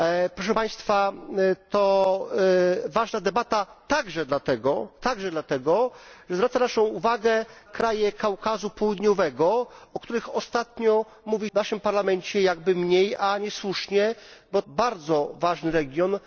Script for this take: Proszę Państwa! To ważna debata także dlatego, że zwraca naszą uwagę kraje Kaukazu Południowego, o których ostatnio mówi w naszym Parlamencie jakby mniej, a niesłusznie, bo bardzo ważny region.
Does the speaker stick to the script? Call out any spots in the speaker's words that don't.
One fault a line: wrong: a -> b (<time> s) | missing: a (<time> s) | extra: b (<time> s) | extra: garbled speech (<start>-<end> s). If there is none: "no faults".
no faults